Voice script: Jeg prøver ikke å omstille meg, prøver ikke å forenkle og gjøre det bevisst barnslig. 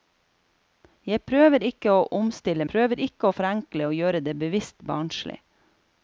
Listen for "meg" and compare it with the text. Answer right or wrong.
wrong